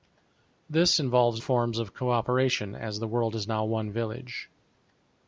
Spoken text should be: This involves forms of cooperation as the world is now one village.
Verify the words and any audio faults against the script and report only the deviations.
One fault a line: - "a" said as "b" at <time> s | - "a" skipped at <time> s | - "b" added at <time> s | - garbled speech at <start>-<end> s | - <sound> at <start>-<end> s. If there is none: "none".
none